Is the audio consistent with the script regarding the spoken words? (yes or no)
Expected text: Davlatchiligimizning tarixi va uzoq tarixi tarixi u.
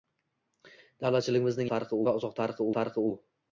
yes